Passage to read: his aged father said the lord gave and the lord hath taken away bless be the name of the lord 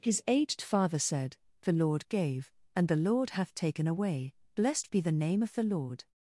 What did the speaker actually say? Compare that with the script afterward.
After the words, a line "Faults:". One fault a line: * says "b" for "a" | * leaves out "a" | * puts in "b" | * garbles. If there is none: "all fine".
his aged father said the lord gave and the lord hath taken away blessed be the name of the lord
Faults:
* says "blessed" for "bless"